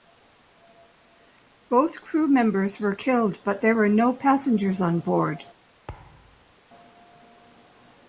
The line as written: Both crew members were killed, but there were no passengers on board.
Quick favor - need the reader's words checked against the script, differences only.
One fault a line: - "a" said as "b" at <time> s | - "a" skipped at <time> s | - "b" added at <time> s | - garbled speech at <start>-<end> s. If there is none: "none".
none